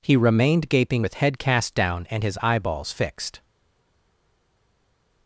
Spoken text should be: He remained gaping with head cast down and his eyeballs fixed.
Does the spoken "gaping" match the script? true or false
true